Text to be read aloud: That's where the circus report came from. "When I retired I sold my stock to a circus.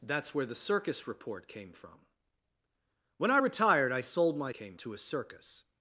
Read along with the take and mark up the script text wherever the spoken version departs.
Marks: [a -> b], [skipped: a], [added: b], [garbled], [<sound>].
That's where the circus report came from. "When I retired I sold my [stock -> came] to a circus.